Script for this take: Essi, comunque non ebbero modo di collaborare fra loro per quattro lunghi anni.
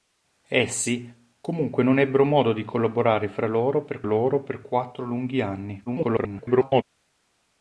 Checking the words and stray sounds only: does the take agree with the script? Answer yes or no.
no